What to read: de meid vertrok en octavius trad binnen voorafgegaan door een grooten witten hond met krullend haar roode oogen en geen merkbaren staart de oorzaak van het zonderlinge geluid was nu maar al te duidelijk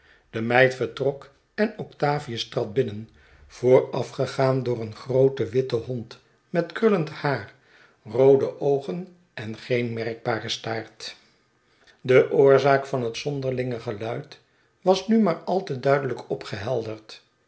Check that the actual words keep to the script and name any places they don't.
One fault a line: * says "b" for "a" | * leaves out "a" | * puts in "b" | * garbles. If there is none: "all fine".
all fine